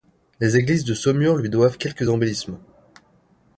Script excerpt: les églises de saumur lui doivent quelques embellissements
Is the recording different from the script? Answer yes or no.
no